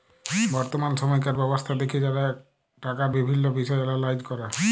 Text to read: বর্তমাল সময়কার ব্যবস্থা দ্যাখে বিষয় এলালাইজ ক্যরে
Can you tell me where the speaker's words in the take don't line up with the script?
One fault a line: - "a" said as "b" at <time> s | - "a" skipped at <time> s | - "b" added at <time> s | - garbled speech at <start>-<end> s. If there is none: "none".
- "যারা টাকার বিভিল্ল্য" added at 2.0 s